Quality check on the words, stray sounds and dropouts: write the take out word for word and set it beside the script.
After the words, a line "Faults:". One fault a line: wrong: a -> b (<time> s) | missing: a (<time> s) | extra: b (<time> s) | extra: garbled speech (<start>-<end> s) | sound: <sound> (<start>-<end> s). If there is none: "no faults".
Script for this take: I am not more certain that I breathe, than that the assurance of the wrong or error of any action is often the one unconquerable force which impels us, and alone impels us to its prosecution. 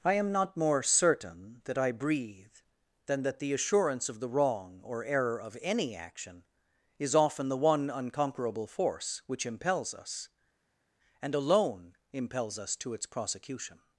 I am not more certain that I breathe, than that the assurance of the wrong or error of any action is often the one unconquerable force which impels us, and alone impels us to its prosecution.
Faults:
no faults